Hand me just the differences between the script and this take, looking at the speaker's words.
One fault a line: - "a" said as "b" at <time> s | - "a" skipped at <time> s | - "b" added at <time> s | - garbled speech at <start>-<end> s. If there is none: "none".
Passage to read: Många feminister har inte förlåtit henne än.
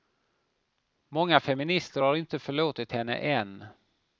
none